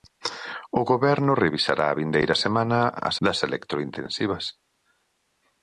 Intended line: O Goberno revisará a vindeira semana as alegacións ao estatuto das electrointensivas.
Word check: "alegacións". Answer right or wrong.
wrong